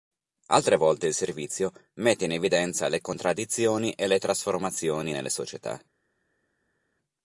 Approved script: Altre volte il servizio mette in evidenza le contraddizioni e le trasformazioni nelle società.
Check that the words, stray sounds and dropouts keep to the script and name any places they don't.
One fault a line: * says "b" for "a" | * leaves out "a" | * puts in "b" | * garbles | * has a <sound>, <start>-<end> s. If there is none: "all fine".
all fine